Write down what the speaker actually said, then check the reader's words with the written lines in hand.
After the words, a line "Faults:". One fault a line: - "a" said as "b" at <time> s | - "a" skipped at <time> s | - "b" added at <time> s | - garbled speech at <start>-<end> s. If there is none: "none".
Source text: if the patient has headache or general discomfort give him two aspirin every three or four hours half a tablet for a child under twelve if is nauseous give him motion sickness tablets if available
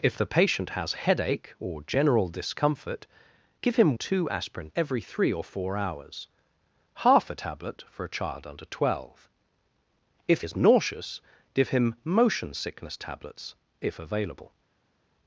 if the patient has headache or general discomfort give him two aspirin every three or four hours half a tablet for a child under twelve if is nauseous give him motion sickness tablets if available
Faults:
none